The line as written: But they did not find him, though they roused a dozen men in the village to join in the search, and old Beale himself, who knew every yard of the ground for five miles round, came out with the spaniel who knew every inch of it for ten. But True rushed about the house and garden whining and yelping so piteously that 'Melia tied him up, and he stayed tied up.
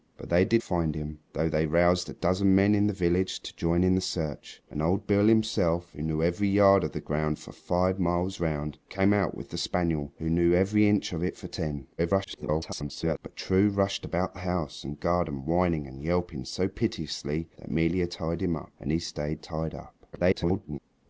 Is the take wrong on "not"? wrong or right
wrong